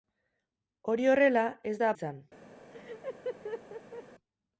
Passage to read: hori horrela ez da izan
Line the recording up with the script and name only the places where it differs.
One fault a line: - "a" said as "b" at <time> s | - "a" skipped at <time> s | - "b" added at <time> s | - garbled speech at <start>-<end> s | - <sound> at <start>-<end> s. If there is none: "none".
- laugh at 2.7-4.0 s